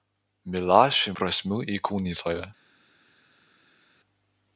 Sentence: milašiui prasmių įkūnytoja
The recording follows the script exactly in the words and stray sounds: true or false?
true